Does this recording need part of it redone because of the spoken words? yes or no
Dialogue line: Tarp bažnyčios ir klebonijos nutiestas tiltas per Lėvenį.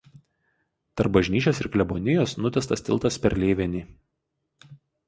no